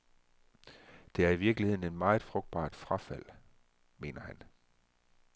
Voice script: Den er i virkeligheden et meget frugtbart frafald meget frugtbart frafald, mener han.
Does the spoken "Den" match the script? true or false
false